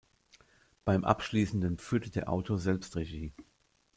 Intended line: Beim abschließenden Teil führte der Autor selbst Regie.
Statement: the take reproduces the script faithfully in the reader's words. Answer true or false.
false